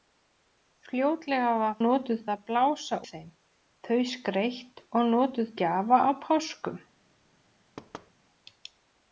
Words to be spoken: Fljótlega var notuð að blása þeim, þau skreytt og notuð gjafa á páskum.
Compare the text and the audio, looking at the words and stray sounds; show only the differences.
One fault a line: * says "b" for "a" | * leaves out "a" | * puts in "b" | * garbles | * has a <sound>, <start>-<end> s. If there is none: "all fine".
* has a thud, 7.8-8.1 s